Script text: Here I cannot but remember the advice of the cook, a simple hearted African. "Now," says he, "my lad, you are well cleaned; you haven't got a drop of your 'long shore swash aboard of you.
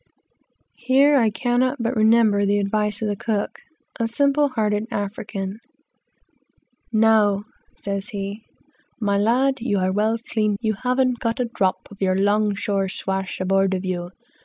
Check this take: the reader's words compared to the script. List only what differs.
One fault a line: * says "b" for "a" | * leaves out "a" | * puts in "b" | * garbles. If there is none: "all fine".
all fine